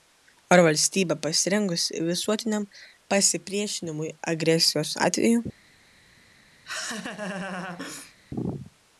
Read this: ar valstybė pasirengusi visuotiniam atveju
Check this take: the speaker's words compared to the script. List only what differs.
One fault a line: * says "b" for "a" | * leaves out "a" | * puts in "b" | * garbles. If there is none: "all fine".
* puts in "pasipriešinimui agresijos"